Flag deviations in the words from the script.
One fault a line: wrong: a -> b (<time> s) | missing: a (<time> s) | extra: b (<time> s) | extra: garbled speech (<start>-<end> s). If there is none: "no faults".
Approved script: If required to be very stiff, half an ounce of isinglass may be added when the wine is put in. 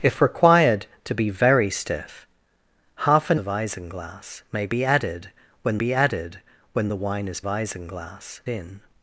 missing: ounce (3.4 s)
extra: be added when (5.8 s)
wrong: put -> isinglass (7.4 s)